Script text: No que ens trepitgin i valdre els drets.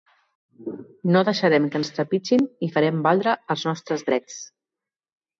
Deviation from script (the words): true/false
true